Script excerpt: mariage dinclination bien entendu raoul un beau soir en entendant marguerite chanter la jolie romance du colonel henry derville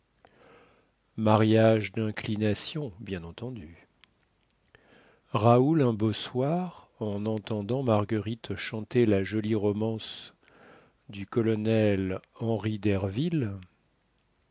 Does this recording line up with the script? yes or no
yes